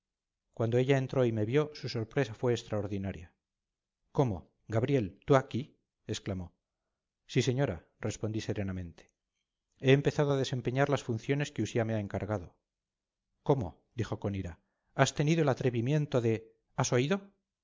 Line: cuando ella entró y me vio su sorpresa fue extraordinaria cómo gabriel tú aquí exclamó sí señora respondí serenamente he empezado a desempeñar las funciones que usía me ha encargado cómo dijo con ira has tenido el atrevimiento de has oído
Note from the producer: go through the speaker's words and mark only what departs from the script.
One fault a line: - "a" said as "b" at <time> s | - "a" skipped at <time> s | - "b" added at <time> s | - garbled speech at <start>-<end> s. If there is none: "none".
none